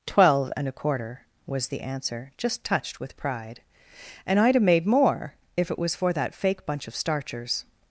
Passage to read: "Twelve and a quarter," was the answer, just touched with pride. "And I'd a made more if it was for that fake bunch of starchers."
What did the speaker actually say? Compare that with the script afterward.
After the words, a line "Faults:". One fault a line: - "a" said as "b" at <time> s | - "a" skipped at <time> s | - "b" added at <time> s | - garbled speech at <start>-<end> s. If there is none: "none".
"Twelve and a quarter," was the answer, just touched with pride. "And I'd a made more if it was for that fake bunch of starchers."
Faults:
none